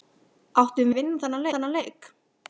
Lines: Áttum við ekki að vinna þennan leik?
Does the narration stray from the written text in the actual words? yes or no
yes